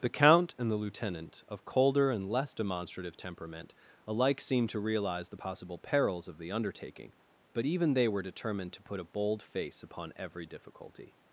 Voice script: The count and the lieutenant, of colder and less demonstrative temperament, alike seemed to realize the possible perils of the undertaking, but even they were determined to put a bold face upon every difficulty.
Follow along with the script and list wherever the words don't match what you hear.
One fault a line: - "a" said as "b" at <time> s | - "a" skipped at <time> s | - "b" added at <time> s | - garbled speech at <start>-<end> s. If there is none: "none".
none